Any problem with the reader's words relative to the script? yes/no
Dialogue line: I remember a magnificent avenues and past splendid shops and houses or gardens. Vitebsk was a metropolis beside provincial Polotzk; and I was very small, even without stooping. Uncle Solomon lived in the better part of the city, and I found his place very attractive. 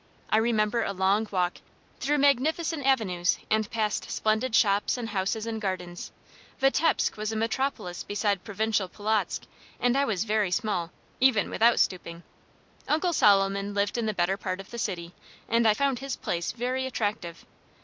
yes